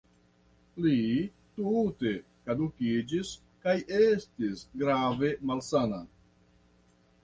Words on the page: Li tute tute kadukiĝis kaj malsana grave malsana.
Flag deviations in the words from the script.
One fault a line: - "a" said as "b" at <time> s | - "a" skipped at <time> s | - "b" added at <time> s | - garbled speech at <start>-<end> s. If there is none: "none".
- "tute" skipped at 2.1 s
- "malsana" said as "estis" at 4.0 s